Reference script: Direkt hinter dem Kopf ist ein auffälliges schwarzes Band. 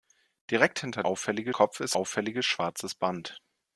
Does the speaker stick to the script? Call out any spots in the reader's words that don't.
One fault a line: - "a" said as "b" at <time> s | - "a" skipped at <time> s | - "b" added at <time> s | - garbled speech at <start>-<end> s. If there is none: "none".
- "dem" said as "auffälliges" at 1.0 s
- "ein" skipped at 2.0 s